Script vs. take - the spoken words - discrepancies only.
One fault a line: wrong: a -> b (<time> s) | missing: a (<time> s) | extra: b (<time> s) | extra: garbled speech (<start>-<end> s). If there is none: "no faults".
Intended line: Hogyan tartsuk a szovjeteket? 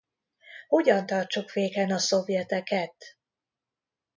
extra: féken (1.5 s)